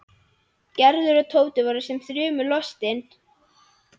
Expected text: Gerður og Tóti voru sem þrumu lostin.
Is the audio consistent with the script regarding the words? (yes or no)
yes